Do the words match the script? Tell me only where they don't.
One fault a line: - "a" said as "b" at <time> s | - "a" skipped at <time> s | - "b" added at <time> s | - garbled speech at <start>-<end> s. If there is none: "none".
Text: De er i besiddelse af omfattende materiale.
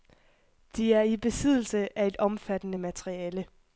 - "et" added at 2.1 s